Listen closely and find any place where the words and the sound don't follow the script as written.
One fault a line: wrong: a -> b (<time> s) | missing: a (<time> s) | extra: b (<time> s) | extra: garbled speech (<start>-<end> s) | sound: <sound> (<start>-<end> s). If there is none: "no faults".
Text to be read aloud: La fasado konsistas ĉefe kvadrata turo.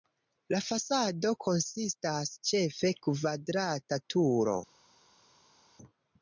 no faults